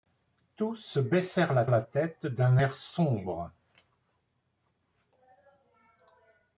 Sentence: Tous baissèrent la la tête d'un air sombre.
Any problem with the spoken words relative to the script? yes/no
no